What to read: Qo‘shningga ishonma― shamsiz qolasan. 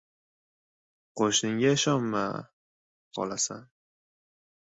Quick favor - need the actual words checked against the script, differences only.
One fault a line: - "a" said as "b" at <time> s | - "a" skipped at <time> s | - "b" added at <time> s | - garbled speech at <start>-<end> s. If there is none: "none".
- "shamsiz" skipped at 2.2 s